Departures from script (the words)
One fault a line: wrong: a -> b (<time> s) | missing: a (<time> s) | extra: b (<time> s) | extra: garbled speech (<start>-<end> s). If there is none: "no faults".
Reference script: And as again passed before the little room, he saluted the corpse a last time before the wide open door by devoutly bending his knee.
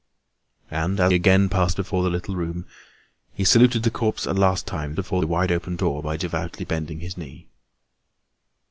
no faults